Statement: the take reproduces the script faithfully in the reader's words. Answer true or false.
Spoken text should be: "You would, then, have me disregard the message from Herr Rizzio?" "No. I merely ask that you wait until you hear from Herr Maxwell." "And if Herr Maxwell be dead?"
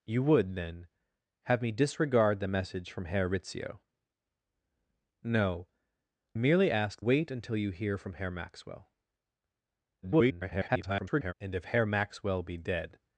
false